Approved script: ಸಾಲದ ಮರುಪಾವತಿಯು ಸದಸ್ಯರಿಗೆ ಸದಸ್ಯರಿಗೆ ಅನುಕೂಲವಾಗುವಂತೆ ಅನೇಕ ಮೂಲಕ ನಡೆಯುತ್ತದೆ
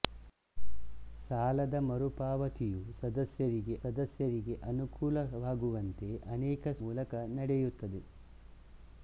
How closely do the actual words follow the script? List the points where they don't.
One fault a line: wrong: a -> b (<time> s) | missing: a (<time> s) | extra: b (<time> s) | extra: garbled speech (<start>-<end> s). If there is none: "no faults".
no faults